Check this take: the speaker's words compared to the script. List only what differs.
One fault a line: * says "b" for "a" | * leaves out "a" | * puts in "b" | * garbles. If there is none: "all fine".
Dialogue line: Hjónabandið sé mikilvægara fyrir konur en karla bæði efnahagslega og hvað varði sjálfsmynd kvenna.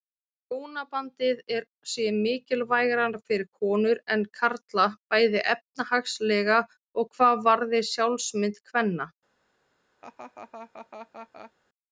all fine